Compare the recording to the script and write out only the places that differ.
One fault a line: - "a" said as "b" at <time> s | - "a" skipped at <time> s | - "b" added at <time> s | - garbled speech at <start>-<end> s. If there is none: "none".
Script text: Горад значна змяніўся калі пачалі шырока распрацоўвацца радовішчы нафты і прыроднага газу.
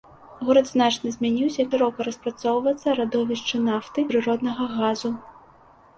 - "калі пачалі" skipped at 1.6 s
- "і" skipped at 4.1 s